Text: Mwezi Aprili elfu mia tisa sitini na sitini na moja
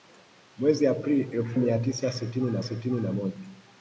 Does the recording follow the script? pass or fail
pass